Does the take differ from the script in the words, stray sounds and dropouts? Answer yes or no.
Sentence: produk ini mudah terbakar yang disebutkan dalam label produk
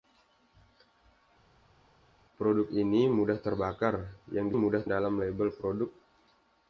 yes